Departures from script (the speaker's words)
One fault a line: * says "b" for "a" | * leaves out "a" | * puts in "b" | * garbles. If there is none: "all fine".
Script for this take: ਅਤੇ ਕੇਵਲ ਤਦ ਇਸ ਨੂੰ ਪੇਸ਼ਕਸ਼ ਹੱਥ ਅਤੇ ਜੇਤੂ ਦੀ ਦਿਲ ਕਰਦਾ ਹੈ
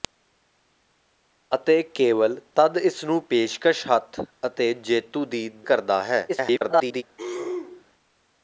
* leaves out "ਦਿਲ"
* garbles